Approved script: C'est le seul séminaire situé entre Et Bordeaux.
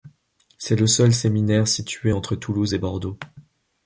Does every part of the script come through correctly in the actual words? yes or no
no